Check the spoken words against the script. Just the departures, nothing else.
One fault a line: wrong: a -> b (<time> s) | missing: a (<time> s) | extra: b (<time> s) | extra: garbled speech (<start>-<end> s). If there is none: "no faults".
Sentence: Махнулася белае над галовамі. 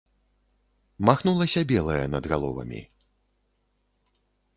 no faults